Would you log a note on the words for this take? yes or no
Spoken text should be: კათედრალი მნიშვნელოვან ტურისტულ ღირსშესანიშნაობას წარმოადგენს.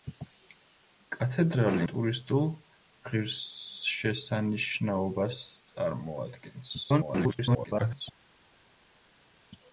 yes